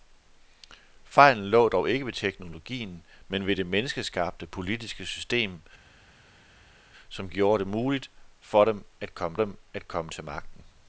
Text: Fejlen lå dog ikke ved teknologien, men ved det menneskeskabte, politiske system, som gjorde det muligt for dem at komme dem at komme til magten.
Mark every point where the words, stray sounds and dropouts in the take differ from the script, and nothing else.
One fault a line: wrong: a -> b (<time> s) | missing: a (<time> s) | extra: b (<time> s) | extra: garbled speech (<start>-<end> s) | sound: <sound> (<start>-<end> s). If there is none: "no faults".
no faults